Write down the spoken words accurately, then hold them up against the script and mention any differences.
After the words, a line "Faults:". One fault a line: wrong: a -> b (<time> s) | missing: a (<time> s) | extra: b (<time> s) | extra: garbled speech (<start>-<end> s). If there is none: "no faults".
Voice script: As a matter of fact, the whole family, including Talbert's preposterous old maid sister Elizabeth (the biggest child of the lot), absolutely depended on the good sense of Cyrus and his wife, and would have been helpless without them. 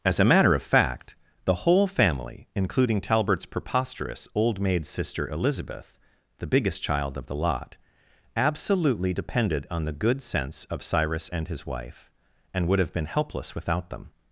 As a matter of fact, the whole family, including Talbert's preposterous old maid sister Elizabeth (the biggest child of the lot), absolutely depended on the good sense of Cyrus and his wife, and would have been helpless without them.
Faults:
no faults